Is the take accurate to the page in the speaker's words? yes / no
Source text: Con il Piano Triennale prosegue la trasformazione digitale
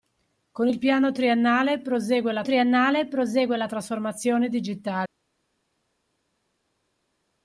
no